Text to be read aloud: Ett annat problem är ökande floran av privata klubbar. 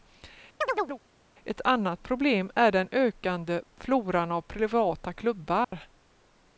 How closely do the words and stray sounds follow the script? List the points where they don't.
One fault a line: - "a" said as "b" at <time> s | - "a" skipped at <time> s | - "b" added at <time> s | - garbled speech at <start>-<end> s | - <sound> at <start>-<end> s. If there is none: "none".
- chirp at 0.6-1.0 s
- "den" added at 2.7 s
- dropout at 5.6-5.7 s